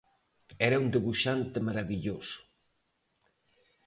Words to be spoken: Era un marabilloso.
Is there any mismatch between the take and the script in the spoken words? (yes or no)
yes